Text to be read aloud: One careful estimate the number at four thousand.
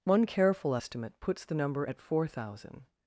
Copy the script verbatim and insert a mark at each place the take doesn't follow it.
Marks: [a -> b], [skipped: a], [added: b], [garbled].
One careful estimate [added: puts] the number at four thousand.